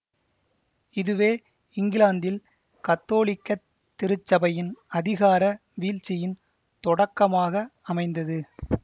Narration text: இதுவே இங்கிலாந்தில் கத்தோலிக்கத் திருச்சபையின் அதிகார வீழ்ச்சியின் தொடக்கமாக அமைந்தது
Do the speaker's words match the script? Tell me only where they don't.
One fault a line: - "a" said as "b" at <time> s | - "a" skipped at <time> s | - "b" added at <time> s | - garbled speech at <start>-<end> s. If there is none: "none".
none